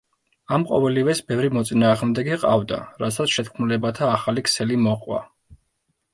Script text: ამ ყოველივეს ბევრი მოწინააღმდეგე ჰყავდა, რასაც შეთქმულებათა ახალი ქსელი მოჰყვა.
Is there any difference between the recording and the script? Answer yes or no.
no